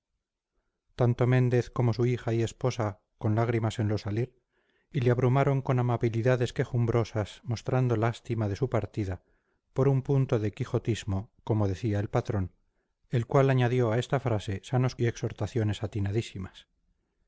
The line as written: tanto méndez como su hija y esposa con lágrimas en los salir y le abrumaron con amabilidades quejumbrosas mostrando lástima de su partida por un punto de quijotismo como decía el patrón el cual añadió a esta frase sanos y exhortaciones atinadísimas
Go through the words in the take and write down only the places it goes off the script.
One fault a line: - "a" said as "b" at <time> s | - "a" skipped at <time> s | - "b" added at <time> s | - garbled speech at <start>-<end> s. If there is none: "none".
none